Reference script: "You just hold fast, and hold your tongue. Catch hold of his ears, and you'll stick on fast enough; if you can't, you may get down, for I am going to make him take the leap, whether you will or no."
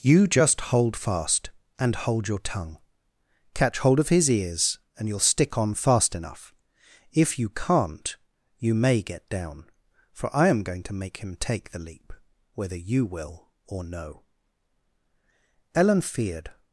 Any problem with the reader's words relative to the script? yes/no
yes